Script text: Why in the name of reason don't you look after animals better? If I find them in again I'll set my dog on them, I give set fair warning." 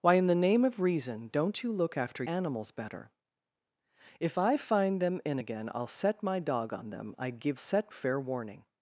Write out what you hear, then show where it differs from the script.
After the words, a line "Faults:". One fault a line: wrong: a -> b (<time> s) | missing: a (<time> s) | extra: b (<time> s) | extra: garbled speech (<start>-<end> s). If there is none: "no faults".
Why in the name of reason don't you look after animals better? If I find them in again I'll set my dog on them, I give set fair warning."
Faults:
no faults